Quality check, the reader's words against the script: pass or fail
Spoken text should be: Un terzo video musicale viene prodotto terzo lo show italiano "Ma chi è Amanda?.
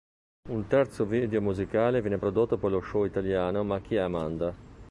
fail